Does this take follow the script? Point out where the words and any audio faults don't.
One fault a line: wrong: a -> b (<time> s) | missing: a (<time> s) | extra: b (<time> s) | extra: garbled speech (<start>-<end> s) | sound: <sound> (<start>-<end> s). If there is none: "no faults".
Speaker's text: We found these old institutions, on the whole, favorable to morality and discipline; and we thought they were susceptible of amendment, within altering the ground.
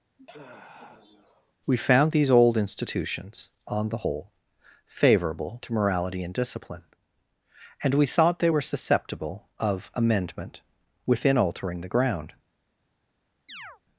sound: sigh (0.2-1.5 s)
sound: chirp (13.5-13.8 s)